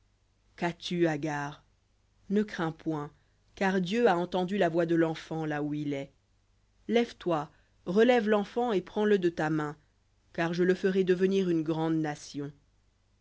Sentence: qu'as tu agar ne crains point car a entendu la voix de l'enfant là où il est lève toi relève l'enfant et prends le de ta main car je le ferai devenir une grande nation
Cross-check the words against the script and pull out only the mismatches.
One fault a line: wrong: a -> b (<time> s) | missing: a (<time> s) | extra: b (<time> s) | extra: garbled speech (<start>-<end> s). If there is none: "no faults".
extra: dieu (3.8 s)